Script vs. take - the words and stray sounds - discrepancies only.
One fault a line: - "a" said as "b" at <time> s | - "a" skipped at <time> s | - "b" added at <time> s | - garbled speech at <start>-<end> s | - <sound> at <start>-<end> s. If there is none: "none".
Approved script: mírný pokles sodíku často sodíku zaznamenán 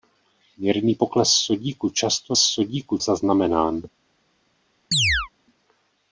- chirp at 4.9-5.3 s